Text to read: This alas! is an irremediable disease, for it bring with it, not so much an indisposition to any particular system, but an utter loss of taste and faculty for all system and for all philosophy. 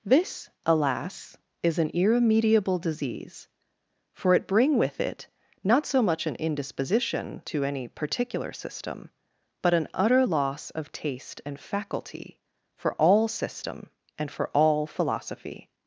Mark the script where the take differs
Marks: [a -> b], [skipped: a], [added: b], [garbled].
This alas! is an irremediable disease, for it bring with it, not so much an indisposition to any particular system, but an utter loss of taste and faculty for all system and for all philosophy.